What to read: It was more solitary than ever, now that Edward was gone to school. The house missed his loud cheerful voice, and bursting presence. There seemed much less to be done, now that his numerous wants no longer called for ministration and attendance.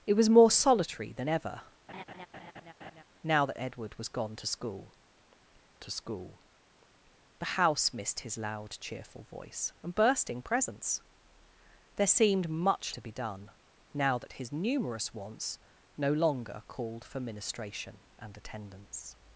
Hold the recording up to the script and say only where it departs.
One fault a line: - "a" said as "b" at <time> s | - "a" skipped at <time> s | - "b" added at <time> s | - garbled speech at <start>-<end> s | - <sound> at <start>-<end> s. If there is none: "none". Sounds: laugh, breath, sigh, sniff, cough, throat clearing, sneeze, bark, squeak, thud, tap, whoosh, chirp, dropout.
- laugh at 1.9-3.0 s
- "to school" added at 5.8 s
- "less" skipped at 12.9 s